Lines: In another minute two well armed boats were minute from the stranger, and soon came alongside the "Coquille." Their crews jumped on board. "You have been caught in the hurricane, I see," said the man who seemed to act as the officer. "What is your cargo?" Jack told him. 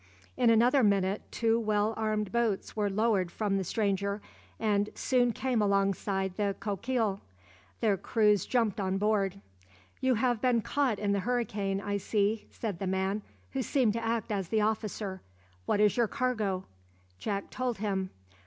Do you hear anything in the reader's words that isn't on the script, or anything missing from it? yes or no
yes